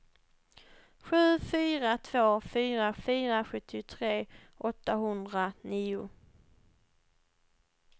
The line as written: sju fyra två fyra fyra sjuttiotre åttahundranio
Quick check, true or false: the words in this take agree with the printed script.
true